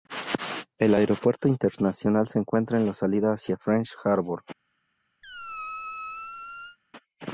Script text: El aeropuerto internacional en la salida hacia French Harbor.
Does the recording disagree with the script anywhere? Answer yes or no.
yes